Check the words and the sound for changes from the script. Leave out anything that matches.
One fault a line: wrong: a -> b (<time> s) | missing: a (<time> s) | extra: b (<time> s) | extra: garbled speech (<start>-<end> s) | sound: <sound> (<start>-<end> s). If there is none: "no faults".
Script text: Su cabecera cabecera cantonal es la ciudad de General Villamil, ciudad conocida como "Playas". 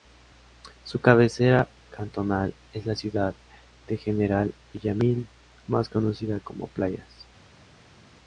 missing: cabecera (1.7 s)
wrong: ciudad -> más (5.7 s)